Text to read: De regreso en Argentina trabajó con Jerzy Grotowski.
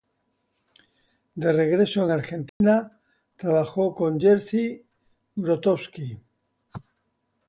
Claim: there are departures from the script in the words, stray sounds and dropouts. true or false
true